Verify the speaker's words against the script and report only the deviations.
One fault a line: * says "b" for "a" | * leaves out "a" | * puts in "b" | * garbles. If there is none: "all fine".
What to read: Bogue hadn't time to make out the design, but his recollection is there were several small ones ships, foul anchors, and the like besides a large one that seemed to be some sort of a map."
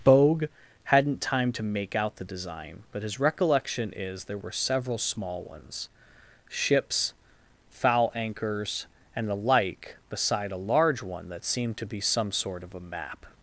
* says "beside" for "besides"